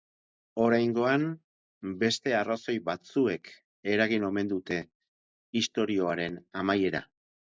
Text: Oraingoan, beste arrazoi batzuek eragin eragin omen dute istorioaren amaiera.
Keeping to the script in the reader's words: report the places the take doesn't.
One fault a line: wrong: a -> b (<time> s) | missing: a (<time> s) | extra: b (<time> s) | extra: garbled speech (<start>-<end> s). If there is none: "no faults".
missing: eragin (4.2 s)